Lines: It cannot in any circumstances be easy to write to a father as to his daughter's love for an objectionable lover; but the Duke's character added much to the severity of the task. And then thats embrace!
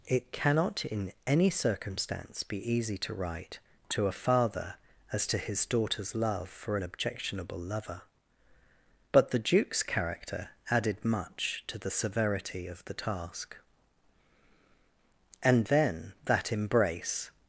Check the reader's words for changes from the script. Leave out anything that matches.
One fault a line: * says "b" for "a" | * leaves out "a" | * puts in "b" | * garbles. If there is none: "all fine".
* says "circumstance" for "circumstances"
* says "that" for "thats"